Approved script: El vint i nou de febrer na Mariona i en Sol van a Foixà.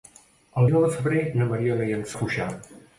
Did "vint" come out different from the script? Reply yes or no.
yes